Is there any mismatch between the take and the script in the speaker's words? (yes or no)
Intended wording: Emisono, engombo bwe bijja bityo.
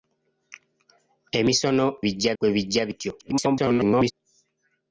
yes